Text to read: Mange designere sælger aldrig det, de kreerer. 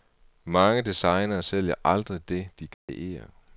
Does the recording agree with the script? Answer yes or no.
yes